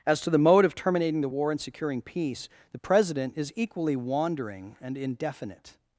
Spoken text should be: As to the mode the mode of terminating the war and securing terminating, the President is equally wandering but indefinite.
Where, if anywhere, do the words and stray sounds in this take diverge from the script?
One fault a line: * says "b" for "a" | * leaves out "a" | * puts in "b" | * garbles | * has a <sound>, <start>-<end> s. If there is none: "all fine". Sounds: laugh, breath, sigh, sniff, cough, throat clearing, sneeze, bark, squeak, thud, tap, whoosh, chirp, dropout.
* leaves out "the mode"
* says "peace" for "terminating"
* says "and" for "but"